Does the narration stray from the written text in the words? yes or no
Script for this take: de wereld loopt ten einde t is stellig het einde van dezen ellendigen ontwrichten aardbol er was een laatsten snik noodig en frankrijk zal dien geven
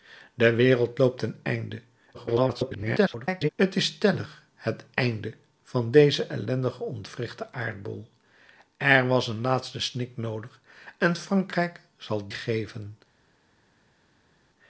yes